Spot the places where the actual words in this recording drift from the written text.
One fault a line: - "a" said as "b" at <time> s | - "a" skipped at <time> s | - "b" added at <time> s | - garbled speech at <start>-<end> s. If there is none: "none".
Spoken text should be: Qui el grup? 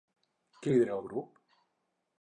- "lidera" added at 0.7 s